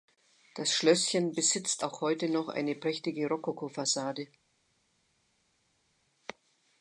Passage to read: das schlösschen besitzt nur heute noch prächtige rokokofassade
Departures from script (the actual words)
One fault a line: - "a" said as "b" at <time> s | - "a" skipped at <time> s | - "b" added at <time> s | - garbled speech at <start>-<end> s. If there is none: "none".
- "nur" said as "auch" at 1.8 s
- "eine" added at 2.5 s